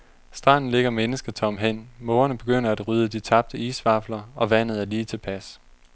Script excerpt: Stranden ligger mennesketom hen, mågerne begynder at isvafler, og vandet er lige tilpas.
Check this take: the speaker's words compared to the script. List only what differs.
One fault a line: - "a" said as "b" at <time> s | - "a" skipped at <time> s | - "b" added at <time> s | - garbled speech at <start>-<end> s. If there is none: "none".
- "rydde de tabte" added at 2.9 s